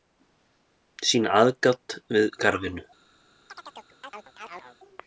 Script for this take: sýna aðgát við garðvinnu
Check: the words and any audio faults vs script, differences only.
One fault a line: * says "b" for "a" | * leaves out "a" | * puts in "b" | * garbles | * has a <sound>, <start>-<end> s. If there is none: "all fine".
* has a chirp, 3.5-4.8 s